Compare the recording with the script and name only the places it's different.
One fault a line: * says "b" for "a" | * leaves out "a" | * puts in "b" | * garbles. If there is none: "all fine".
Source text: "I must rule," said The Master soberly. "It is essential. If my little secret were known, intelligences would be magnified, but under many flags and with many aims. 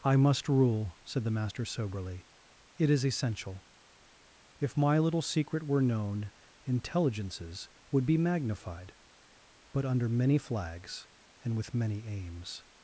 all fine